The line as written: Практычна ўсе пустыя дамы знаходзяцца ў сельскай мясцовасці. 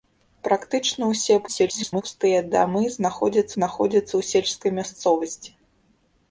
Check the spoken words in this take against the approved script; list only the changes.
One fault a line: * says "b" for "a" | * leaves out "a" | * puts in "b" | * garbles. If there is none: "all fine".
* garbles
* puts in "знаходзяцца"